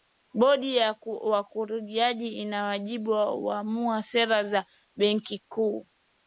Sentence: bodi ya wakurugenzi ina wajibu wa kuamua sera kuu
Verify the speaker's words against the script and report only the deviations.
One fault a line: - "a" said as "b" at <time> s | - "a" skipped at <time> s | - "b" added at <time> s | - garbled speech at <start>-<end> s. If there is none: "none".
- "za benki" added at 4.4 s